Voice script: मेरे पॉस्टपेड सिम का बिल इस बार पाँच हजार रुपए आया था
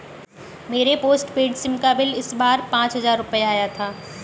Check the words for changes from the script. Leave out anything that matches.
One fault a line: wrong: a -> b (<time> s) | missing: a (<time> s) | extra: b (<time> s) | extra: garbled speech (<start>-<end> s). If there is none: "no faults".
no faults